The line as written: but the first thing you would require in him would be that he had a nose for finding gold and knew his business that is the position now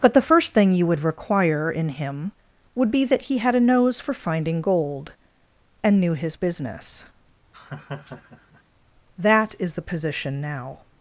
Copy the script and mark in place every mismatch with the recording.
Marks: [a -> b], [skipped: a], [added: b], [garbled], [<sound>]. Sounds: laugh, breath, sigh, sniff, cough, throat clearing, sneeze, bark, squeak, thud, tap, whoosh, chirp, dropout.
but the first thing you would require in him would be that he had a nose for finding gold and knew his business [laugh] that is the position now